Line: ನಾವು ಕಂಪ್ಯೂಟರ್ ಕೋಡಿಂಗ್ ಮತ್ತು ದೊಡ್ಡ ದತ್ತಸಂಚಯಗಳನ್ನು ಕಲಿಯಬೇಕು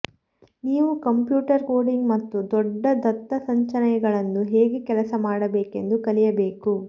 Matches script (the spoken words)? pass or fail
fail